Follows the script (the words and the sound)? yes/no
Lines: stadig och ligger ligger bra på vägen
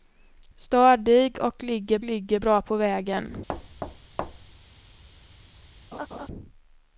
no